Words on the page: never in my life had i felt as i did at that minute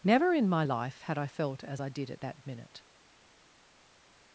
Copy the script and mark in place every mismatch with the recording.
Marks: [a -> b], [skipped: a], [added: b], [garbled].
never in my life had i felt as i did at that minute